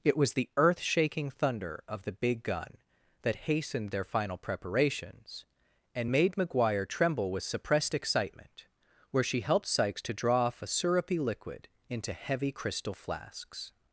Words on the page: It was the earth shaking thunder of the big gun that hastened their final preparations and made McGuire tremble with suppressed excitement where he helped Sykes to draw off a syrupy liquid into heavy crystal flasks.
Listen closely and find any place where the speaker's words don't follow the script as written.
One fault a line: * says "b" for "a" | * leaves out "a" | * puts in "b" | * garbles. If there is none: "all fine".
* says "she" for "he"